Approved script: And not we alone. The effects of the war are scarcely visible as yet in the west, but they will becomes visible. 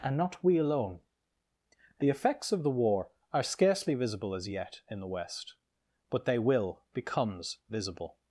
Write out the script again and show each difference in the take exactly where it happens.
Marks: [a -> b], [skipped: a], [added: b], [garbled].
And not we alone. The effects of the war are scarcely visible as yet in the west, but they will becomes visible.